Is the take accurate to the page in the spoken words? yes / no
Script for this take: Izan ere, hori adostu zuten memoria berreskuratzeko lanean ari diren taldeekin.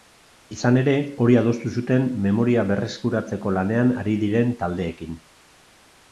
yes